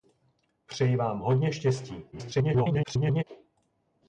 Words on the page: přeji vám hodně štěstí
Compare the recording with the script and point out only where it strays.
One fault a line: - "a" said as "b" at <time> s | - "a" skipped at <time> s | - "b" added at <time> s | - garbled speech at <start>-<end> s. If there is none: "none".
- garbled speech at 2.1-3.2 s